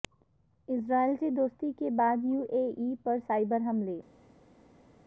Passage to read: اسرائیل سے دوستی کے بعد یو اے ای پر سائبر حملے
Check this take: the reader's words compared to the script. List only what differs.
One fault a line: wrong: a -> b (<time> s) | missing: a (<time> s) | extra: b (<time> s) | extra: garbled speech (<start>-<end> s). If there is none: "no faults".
no faults